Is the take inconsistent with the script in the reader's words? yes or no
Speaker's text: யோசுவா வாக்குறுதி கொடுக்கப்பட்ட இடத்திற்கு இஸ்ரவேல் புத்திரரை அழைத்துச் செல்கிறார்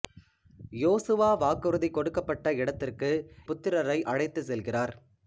yes